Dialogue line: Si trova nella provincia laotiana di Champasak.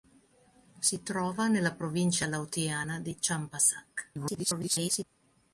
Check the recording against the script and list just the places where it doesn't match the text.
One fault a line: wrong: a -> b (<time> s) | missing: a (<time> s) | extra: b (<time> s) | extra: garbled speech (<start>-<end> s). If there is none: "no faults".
extra: garbled speech (4.1-5.0 s)